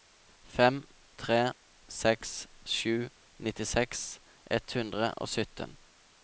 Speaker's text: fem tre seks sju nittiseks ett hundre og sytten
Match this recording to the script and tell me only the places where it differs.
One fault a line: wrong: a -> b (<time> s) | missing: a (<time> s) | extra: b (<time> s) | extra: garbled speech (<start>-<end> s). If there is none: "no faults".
no faults